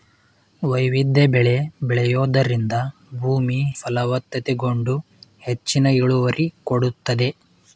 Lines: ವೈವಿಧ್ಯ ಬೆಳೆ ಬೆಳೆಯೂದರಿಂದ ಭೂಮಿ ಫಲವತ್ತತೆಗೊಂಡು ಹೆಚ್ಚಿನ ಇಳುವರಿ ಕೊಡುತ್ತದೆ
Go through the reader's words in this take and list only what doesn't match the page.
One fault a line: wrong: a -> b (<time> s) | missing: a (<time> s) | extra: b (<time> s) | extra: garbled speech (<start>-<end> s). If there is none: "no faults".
no faults